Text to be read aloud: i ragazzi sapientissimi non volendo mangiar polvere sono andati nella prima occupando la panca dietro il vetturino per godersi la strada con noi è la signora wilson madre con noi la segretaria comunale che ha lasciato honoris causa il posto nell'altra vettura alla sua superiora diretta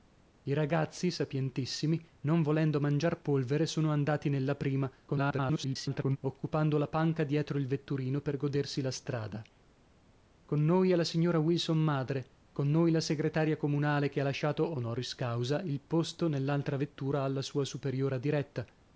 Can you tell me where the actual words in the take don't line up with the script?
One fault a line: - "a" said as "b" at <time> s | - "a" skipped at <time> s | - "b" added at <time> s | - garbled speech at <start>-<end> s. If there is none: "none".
- garbled speech at 5.1-6.2 s